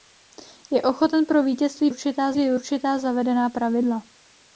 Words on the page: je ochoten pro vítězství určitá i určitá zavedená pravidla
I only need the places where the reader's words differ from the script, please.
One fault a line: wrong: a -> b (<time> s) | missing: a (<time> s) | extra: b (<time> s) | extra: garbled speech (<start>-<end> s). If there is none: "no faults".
no faults